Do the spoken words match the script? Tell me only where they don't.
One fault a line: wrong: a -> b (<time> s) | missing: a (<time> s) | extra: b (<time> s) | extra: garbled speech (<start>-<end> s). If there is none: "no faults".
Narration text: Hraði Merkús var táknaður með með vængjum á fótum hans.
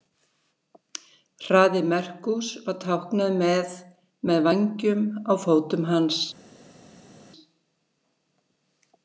no faults